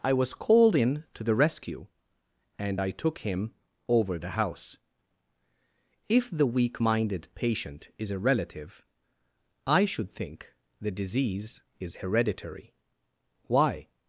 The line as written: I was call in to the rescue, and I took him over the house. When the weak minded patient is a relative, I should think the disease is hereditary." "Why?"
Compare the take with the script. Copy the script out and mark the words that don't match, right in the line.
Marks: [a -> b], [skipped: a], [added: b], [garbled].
I was [call -> called] in to the rescue, and I took him over the house. [When -> If] the weak minded patient is a relative, I should think the disease is hereditary." "Why?"